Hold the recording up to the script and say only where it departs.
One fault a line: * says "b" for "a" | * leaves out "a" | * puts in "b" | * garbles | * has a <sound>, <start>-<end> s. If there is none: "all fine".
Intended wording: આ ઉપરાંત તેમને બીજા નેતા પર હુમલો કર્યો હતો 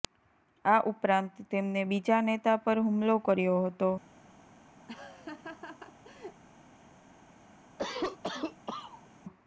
* has a laugh, 4.9-6.4 s
* has a cough, 7.8-9.1 s